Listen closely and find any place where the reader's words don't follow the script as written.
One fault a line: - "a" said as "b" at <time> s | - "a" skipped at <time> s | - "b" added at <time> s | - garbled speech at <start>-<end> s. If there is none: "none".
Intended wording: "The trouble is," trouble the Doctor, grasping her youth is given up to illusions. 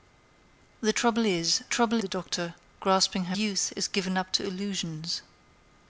none